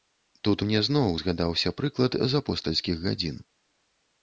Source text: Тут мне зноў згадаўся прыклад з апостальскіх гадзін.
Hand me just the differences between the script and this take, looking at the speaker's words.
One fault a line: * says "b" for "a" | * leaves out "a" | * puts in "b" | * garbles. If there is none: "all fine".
all fine